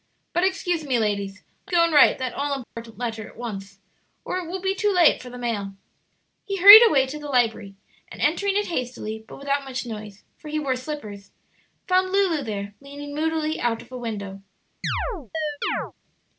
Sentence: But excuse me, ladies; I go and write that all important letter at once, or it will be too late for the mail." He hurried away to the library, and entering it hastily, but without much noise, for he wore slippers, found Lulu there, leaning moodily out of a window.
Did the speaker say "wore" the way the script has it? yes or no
yes